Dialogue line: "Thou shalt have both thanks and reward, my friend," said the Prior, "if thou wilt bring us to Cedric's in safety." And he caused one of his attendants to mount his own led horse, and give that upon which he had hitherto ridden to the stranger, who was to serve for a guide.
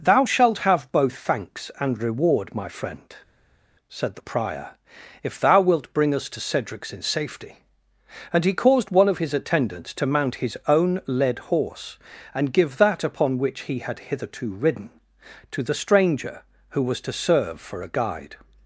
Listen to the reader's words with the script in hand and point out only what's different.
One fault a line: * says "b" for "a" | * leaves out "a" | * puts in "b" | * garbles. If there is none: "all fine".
all fine